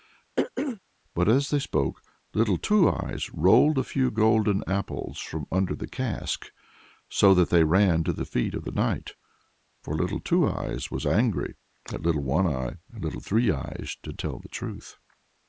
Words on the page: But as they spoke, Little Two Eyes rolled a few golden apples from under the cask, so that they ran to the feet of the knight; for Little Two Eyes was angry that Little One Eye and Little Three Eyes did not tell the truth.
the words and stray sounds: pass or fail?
fail